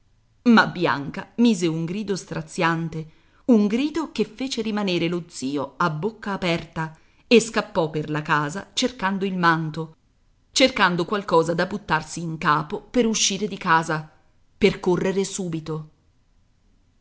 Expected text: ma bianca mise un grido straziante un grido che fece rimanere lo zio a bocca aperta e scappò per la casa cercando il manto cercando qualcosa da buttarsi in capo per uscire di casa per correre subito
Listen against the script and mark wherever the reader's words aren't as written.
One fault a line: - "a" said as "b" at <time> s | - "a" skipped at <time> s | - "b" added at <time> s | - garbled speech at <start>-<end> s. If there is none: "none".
none